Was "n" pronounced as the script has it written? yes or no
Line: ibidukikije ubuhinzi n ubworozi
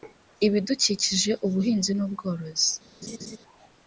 yes